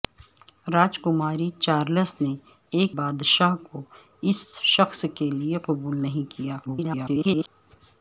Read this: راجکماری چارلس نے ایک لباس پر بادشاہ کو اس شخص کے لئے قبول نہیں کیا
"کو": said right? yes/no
yes